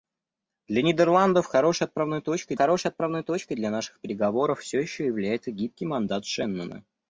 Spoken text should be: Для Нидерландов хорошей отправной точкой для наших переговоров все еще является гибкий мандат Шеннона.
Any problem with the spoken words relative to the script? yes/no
yes